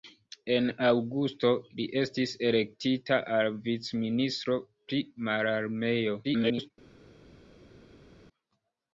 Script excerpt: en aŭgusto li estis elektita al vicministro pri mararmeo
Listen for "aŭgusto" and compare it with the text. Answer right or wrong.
right